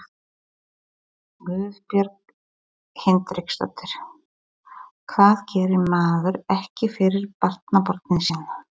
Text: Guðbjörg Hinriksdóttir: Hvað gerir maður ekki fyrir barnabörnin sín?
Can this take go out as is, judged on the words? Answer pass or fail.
pass